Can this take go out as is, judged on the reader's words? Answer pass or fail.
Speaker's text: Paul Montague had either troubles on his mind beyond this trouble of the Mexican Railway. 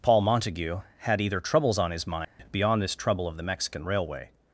pass